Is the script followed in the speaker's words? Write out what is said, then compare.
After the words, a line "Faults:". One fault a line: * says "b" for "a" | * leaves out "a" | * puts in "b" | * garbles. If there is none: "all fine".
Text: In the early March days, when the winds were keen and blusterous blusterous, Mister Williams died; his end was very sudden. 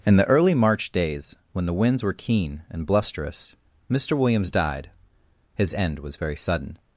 In the early March days, when the winds were keen and blusterous, Mister Williams died; his end was very sudden.
Faults:
* leaves out "blusterous"